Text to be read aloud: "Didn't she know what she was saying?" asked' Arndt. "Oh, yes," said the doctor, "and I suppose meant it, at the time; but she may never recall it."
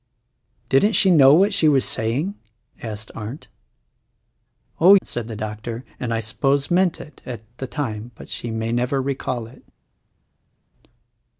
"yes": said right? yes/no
no